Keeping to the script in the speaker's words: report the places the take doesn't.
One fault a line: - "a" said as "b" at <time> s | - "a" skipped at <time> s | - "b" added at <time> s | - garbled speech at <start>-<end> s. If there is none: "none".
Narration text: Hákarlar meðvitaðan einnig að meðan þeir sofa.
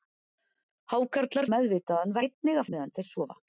none